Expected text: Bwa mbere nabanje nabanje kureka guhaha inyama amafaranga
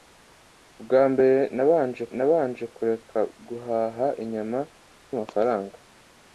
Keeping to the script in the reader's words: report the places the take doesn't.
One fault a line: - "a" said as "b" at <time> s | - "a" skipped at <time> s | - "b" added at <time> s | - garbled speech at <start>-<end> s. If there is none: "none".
none